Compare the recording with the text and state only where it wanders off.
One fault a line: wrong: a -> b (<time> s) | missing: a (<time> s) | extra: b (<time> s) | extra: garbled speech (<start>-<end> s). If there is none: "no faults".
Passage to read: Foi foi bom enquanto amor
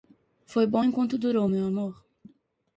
missing: foi (0.7 s)
extra: durou meu (1.2 s)